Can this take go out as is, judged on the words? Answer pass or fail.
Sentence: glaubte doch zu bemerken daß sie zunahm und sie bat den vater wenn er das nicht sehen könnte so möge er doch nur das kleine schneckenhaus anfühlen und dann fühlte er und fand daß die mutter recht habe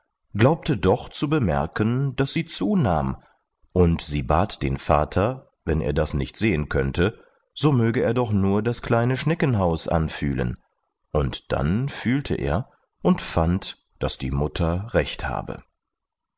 pass